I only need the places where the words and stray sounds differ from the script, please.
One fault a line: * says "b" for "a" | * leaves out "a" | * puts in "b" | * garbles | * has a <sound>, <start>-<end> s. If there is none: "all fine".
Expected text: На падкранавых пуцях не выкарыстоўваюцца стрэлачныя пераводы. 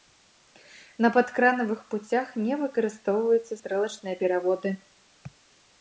all fine